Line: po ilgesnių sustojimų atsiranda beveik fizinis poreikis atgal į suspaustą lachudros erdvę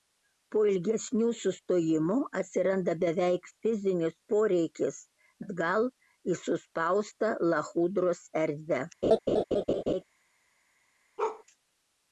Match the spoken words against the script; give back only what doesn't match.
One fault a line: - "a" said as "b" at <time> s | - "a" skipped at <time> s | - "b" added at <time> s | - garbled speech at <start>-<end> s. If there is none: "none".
none